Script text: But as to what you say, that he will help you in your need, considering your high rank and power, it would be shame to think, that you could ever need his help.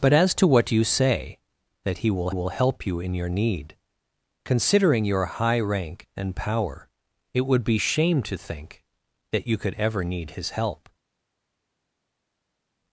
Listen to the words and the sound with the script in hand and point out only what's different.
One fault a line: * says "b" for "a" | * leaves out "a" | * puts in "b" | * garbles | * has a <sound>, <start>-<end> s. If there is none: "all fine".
* puts in "will"